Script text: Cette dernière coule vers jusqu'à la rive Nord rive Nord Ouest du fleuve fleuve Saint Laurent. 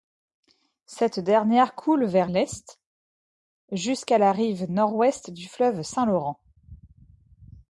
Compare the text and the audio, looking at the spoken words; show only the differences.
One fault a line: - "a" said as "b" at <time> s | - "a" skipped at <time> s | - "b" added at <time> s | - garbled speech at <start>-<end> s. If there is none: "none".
- "l'Est" added at 2.2 s
- "rive Nord" skipped at 4.9 s
- "fleuve" skipped at 5.8 s